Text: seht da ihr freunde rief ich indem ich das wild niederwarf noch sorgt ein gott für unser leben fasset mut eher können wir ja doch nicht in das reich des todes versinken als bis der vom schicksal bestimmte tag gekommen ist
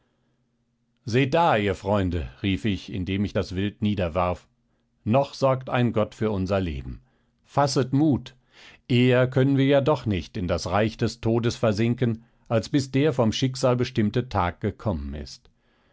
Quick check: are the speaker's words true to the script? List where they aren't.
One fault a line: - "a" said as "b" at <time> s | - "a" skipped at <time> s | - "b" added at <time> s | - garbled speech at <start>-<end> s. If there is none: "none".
none